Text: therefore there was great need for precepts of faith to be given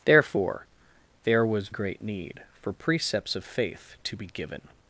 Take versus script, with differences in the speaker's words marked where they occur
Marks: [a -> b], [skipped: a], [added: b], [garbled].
therefore there was great need for precepts of faith to be given